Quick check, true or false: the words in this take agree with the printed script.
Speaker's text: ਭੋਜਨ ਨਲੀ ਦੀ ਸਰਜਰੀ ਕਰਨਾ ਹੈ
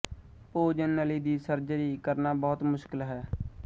false